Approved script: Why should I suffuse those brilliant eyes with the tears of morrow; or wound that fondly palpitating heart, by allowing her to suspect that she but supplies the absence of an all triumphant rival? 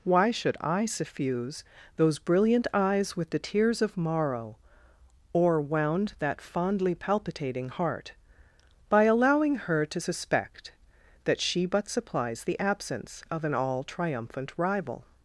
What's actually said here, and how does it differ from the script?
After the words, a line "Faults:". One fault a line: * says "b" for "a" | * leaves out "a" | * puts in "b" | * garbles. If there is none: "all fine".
Why should I suffuse those brilliant eyes with the tears of morrow; or wound that fondly palpitating heart, by allowing her to suspect that she but supplies the absence of an all triumphant rival?
Faults:
all fine